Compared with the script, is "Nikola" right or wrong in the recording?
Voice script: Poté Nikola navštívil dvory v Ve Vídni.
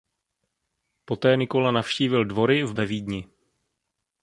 right